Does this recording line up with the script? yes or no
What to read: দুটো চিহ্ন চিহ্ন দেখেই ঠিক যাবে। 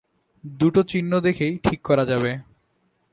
no